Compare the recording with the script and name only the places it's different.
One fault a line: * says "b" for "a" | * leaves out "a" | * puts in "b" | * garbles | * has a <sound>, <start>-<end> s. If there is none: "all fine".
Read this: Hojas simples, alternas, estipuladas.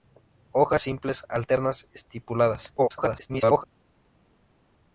* garbles